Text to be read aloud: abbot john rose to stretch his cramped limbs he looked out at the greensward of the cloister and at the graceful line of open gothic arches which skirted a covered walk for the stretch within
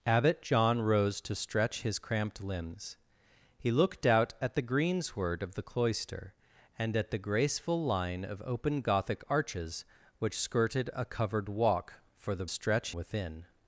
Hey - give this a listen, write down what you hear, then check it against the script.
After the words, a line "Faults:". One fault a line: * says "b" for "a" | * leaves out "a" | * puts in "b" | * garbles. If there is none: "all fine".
abbot john rose to stretch his cramped limbs he looked out at the greensward of the cloister and at the graceful line of open gothic arches which skirted a covered walk for the stretch within
Faults:
all fine